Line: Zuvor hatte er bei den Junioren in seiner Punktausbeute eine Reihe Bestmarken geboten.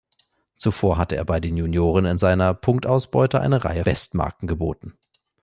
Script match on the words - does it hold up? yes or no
yes